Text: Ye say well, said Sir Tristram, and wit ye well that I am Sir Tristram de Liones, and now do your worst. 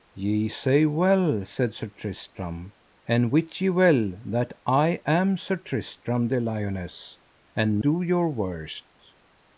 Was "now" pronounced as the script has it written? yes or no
no